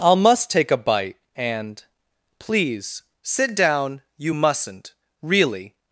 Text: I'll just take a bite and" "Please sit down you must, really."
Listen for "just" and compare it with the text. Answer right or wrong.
wrong